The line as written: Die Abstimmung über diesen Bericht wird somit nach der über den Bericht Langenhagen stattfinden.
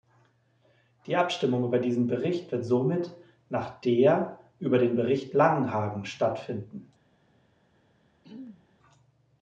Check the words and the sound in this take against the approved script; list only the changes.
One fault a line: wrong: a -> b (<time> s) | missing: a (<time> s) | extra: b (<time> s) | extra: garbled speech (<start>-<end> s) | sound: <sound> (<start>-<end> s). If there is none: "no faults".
sound: throat clearing (8.2-8.7 s)